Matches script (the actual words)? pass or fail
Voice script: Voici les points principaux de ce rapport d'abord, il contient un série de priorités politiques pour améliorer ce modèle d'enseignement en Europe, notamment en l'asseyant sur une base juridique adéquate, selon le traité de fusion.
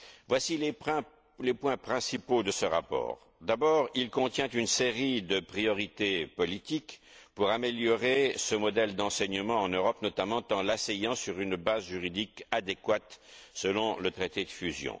fail